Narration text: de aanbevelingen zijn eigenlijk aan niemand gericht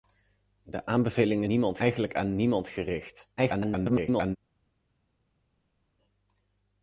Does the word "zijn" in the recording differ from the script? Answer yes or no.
yes